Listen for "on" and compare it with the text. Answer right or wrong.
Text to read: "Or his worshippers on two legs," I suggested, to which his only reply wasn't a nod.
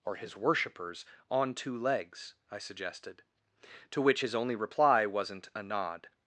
right